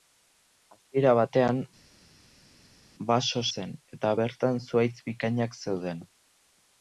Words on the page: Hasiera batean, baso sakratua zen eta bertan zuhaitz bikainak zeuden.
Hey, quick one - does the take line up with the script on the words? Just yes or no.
no